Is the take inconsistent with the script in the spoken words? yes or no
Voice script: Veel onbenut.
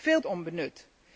no